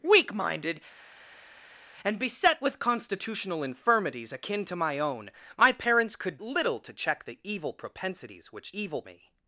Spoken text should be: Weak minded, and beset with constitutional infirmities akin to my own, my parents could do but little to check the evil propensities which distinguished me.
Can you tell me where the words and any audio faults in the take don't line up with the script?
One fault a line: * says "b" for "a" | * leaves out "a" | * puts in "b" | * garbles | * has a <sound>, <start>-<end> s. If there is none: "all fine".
* leaves out "do but"
* says "evil" for "distinguished"